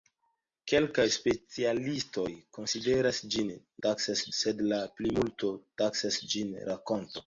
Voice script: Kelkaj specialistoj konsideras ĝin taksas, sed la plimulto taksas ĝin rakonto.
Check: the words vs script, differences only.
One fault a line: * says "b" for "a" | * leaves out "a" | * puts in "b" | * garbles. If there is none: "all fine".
all fine